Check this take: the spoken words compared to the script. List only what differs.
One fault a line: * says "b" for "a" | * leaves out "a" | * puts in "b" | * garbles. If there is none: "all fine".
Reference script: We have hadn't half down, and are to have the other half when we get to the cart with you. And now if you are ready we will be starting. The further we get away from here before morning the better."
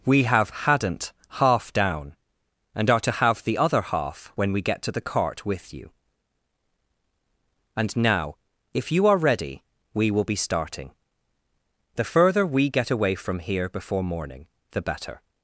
all fine